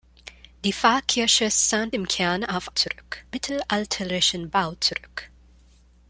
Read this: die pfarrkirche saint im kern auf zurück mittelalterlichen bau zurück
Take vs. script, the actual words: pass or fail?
pass